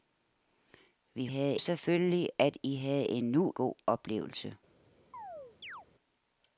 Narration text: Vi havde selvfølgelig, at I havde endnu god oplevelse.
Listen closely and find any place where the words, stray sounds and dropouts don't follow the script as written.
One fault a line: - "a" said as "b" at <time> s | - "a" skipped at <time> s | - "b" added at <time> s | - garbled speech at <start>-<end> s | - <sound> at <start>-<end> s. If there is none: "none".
- chirp at 5.1-5.9 s